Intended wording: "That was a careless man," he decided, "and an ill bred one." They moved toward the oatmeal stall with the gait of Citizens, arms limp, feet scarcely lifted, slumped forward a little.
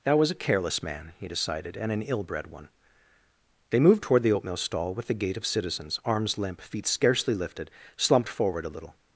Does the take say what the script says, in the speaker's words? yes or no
yes